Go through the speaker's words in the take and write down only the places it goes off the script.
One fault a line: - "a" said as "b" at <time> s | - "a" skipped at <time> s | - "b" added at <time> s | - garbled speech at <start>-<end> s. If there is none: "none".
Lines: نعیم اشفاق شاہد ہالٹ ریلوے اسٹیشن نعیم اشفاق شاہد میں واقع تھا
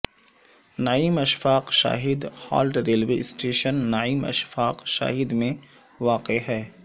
- "تھا" said as "ہے" at 6.5 s